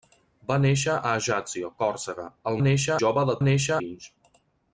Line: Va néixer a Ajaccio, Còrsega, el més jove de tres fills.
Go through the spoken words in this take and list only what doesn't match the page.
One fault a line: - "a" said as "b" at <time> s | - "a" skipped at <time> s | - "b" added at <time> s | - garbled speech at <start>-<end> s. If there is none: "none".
- "més" said as "néixer" at 2.6 s
- "tres" said as "néixer" at 3.4 s